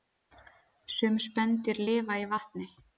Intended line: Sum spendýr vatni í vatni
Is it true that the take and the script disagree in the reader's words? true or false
true